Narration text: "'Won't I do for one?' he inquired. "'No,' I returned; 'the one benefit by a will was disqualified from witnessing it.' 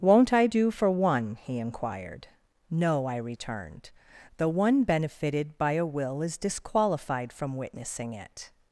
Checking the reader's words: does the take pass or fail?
fail